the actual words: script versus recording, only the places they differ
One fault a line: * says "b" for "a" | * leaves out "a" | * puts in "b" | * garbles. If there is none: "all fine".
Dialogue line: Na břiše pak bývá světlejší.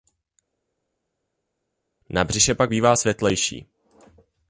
all fine